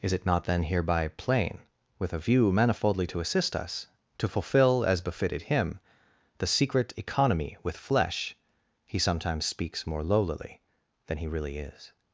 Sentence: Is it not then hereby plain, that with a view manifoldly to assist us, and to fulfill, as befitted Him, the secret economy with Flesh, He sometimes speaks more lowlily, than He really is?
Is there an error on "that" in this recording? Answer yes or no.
yes